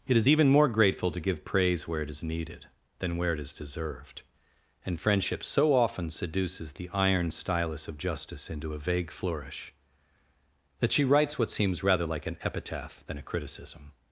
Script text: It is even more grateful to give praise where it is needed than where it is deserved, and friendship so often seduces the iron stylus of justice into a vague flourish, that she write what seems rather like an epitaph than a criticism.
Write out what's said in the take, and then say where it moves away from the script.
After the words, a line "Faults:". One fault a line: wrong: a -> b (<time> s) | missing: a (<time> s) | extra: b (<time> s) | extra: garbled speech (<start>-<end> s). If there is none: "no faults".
It is even more grateful to give praise where it is needed than where it is deserved, and friendship so often seduces the iron stylus of justice into a vague flourish, that she writes what seems rather like an epitaph than a criticism.
Faults:
wrong: write -> writes (11.0 s)